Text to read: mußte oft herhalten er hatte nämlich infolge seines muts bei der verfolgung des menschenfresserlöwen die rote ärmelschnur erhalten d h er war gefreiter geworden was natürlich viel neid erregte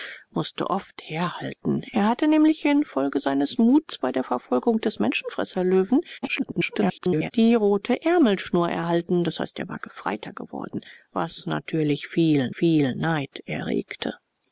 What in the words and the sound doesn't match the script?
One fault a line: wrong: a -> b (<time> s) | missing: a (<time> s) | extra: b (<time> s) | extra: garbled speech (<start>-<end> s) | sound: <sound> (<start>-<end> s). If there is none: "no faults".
extra: garbled speech (6.2-7.3 s)
extra: viel (12.5 s)